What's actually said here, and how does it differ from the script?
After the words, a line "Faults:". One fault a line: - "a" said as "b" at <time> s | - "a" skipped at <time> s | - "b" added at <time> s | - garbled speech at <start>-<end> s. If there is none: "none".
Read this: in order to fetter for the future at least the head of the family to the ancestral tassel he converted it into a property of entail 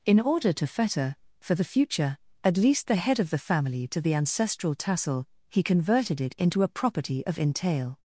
in order to fetter for the future at least the head of the family to the ancestral tassel he converted it into a property of entail
Faults:
none